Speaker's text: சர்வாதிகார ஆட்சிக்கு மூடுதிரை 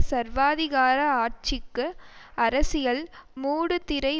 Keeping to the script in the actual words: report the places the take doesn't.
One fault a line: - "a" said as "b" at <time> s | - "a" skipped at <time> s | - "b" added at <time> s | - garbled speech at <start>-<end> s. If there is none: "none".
- "அரசியல்" added at 2.4 s